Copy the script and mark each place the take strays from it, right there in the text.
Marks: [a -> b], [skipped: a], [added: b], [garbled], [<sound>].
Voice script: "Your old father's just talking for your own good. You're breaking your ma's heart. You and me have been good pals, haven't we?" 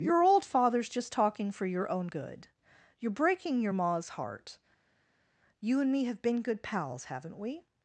"Your old father's just talking for your own good. You're breaking your ma's heart. You and me have been good pals, haven't we?"